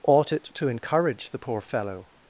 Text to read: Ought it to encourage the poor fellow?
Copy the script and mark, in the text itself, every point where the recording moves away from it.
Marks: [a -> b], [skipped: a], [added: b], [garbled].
Ought it to encourage the poor fellow?